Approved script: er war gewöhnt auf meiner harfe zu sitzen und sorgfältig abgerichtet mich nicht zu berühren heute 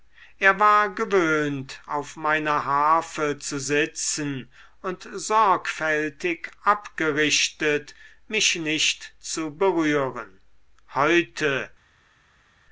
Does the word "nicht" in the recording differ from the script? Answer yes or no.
no